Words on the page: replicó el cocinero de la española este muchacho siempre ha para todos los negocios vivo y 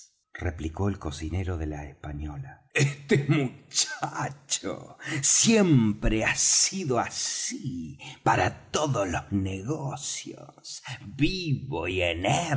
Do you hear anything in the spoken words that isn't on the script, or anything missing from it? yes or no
yes